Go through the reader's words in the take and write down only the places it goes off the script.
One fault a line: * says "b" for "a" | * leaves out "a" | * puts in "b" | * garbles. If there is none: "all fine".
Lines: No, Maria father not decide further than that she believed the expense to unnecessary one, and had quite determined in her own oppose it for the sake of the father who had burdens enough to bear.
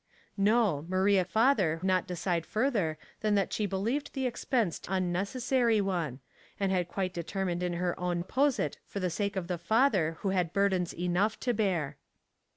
all fine